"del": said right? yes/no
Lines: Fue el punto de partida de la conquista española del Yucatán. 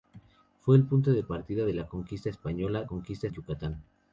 no